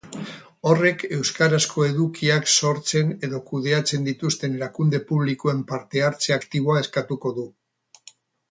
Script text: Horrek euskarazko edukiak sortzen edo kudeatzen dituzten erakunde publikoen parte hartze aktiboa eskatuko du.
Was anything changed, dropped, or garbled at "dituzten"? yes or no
no